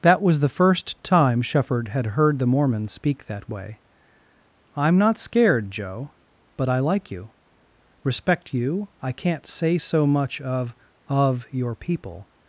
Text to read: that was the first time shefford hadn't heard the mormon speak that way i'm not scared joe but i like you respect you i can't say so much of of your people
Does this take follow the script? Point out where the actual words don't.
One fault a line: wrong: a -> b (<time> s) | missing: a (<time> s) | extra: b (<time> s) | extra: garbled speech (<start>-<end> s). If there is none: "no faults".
wrong: hadn't -> had (1.9 s)